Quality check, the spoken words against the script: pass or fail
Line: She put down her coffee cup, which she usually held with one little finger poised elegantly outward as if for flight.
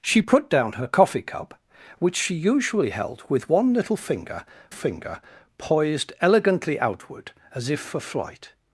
fail